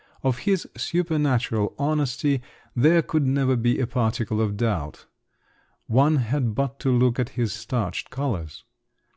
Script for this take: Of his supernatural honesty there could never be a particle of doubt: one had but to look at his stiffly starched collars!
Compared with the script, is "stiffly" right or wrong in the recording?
wrong